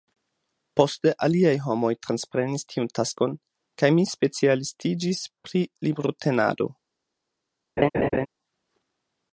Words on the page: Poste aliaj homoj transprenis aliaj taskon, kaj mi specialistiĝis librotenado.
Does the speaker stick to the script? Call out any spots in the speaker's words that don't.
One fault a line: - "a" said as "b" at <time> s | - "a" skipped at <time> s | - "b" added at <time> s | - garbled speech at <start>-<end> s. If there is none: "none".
- "aliaj" said as "tiun" at 2.7 s
- "pri" added at 5.5 s